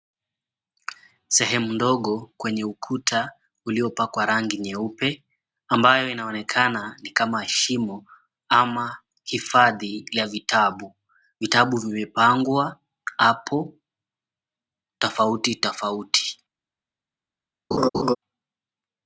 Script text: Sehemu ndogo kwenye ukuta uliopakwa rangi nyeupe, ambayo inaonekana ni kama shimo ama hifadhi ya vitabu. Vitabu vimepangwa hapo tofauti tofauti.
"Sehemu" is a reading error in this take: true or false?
false